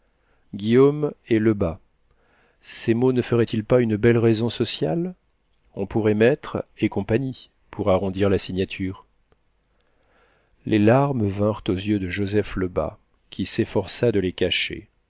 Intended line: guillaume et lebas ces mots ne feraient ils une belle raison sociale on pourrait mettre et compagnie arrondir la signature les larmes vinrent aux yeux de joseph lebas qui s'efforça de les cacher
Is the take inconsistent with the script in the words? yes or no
yes